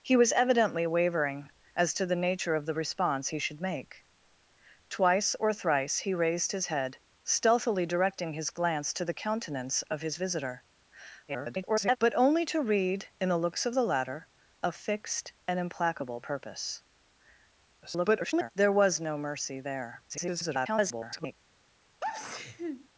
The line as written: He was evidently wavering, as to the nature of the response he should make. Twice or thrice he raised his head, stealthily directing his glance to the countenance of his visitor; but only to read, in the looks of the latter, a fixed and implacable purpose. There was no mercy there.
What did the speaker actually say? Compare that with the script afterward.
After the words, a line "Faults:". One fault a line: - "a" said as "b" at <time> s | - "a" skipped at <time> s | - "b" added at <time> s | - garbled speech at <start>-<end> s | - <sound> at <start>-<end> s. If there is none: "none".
He was evidently wavering, as to the nature of the response he should make. Twice or thrice he raised his head, stealthily directing his glance to the countenance of his visitor; [garbled] but only to read, in the looks of the latter, a fixed and implacable purpose. [garbled] There was no mercy there. [garbled]
Faults:
- garbled speech at 11.3-12.0 s
- garbled speech at 17.8-18.5 s
- garbled speech at 20.1-21.3 s
- sneeze at 22.0-22.9 s